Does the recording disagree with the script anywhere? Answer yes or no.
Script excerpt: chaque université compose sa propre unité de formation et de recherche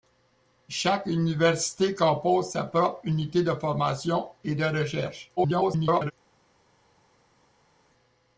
yes